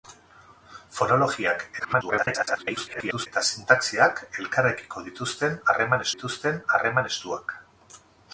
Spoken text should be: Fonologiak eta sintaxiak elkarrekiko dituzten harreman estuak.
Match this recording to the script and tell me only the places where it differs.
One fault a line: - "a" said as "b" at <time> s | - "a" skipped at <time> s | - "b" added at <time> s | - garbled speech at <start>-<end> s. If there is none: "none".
- garbled speech at 1.8-3.3 s
- "dituzten harreman" added at 6.1 s